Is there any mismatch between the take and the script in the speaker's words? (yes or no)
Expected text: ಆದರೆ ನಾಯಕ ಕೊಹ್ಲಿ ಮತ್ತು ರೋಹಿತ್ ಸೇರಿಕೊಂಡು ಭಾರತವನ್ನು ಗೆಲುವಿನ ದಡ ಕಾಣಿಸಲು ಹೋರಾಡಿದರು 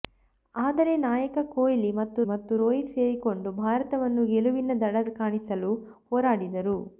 yes